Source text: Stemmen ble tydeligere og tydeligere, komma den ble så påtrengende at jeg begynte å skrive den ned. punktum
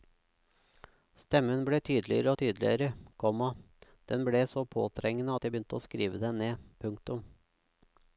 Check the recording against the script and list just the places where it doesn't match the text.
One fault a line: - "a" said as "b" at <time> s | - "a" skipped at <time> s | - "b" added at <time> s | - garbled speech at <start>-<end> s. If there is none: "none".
none